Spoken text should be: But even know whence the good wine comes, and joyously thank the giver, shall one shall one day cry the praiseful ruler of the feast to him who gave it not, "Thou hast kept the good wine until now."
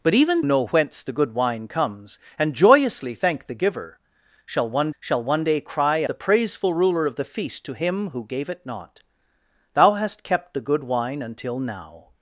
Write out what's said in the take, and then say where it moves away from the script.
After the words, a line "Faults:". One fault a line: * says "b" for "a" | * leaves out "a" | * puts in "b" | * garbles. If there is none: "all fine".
But even know whence the good wine comes, and joyously thank the giver, shall one shall one day cry the praiseful ruler of the feast to him who gave it not, "Thou hast kept the good wine until now."
Faults:
all fine